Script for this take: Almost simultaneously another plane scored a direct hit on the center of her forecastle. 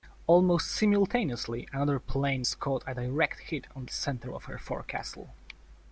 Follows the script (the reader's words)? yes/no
yes